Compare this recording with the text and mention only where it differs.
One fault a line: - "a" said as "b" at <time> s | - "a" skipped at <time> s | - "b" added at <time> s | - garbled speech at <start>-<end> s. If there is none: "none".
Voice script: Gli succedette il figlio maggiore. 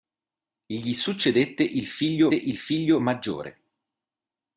- "il figlio" added at 2.3 s